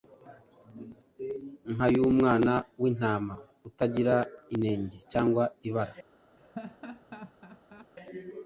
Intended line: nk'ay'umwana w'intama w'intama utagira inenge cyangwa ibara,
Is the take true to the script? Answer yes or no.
no